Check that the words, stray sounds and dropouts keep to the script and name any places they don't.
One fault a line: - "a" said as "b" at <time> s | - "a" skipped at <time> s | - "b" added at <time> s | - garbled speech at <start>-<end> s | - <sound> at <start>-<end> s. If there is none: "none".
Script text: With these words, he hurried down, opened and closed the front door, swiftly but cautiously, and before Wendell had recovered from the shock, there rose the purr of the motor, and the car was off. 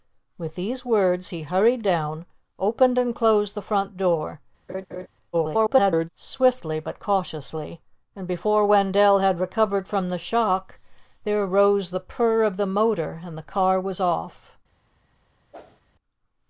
- laugh at 4.7-5.1 s
- garbled speech at 5.3-6.1 s
- whoosh at 15.5-15.8 s